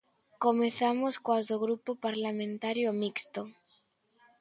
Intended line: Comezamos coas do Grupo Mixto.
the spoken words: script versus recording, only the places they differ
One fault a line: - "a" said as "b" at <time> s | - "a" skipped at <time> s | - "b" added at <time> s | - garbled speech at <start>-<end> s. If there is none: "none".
- "Parlamentario" added at 2.1 s